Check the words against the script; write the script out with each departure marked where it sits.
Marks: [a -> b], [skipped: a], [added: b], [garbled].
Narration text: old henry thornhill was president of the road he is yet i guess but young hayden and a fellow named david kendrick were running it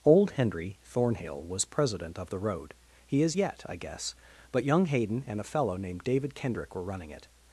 old henry thornhill was president of the road he is yet i guess but young hayden and a fellow named david kendrick were running it